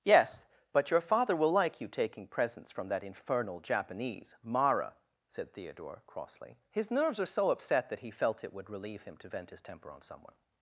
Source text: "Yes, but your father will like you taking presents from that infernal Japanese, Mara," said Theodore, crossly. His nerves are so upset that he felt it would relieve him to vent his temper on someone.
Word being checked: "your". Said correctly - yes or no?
yes